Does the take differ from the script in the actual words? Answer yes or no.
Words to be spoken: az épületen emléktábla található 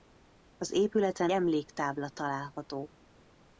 no